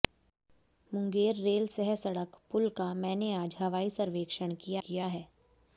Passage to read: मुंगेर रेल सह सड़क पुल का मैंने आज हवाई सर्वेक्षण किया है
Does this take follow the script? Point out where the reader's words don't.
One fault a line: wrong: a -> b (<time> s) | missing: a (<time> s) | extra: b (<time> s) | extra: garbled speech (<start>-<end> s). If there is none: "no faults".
extra: किया (4.8 s)